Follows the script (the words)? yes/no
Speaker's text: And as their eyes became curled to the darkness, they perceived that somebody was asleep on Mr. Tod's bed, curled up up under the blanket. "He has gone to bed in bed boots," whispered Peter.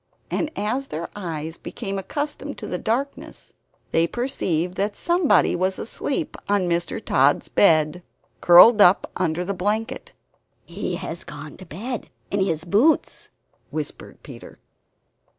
no